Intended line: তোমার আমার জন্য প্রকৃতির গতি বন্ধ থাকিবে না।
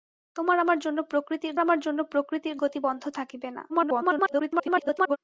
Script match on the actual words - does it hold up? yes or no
no